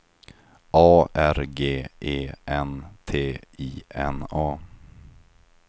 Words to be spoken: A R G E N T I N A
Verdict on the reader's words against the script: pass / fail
pass